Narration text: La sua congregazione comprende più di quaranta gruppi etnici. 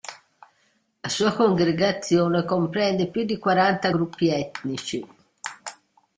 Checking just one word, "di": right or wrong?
right